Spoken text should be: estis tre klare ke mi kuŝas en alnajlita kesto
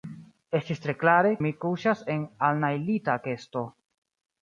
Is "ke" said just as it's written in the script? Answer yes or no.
no